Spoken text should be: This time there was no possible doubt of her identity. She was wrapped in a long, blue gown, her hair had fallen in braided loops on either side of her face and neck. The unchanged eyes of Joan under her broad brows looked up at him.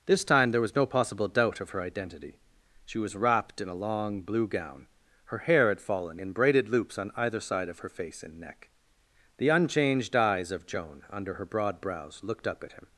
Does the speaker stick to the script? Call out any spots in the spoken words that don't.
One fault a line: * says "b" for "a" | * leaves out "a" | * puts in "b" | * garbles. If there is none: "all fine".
all fine